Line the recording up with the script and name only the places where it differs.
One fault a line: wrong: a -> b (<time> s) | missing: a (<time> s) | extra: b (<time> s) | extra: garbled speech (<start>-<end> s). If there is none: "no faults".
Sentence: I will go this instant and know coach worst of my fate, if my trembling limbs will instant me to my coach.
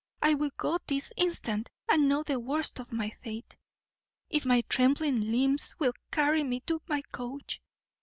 wrong: coach -> the (2.2 s)
wrong: instant -> carry (6.1 s)